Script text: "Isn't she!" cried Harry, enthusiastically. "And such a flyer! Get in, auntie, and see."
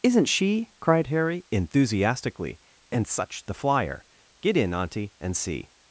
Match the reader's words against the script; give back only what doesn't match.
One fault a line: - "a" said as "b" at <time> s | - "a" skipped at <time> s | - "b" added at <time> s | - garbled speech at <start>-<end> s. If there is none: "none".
- "a" said as "the" at 3.5 s